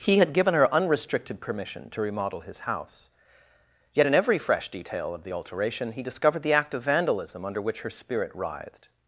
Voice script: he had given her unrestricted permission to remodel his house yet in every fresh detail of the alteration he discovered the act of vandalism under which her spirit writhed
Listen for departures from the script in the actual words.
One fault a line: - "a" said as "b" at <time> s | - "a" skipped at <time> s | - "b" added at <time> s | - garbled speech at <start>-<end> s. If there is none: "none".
none